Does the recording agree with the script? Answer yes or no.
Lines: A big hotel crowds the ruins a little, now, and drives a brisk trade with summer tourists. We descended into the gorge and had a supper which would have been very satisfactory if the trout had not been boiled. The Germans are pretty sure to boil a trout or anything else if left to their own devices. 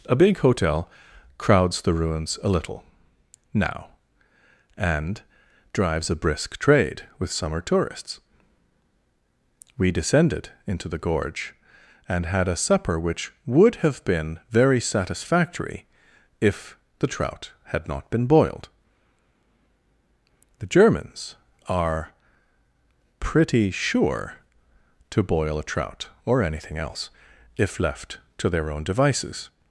yes